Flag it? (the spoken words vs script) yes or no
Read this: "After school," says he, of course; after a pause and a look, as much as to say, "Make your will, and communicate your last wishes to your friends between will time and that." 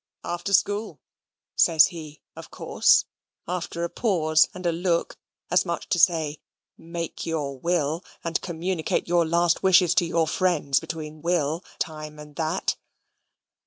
no